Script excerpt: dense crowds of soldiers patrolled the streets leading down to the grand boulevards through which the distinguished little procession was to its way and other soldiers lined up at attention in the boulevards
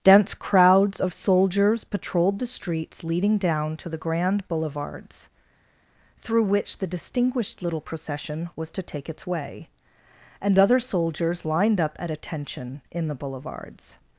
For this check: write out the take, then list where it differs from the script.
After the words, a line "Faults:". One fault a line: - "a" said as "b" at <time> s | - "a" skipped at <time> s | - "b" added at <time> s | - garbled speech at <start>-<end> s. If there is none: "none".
dense crowds of soldiers patrolled the streets leading down to the grand boulevards through which the distinguished little procession was to take its way and other soldiers lined up at attention in the boulevards
Faults:
- "take" added at 8.8 s